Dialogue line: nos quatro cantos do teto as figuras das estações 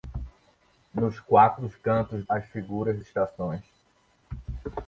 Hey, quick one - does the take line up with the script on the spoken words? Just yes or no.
no